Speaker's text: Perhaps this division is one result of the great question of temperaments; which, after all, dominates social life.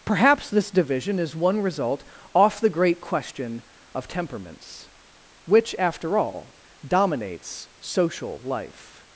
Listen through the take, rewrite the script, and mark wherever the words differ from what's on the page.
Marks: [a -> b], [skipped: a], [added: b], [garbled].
Perhaps this division is one result [of -> off] the great question of temperaments; which, after all, dominates social life.